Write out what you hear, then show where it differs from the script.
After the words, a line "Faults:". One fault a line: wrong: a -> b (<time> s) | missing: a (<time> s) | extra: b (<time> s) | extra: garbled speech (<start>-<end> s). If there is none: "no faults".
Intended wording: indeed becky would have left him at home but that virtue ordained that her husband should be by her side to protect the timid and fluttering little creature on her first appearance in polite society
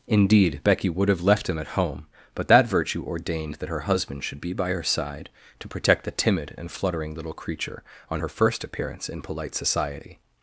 indeed becky would have left him at home but that virtue ordained that her husband should be by her side to protect the timid and fluttering little creature on her first appearance in polite society
Faults:
no faults